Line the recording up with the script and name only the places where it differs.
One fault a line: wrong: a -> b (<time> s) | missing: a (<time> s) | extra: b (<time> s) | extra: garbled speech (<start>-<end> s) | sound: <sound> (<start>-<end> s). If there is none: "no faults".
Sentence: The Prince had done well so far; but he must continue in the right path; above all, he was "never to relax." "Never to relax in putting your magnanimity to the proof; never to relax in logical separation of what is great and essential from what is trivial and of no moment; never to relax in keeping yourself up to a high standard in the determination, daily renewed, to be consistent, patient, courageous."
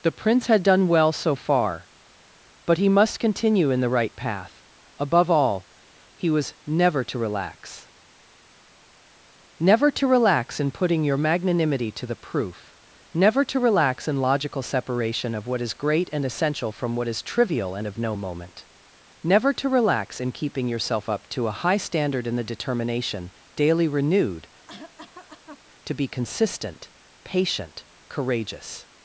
sound: cough (24.7-25.6 s)